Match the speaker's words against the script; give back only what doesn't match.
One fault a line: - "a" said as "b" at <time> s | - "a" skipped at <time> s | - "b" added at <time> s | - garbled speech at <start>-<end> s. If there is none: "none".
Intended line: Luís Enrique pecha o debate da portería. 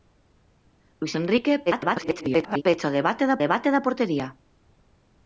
- garbled speech at 1.7-2.6 s
- "debate da" added at 3.4 s